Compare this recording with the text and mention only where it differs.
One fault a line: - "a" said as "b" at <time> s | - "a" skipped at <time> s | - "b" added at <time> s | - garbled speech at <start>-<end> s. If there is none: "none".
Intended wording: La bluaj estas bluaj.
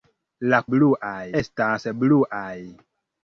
none